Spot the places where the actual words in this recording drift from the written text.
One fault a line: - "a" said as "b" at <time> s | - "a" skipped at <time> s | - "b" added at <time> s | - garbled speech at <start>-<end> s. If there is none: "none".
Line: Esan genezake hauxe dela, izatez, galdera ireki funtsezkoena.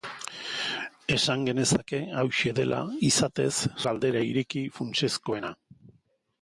none